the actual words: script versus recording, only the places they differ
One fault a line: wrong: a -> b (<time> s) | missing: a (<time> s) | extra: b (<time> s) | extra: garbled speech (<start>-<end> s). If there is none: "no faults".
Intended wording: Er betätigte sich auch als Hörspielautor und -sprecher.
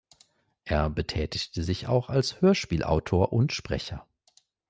no faults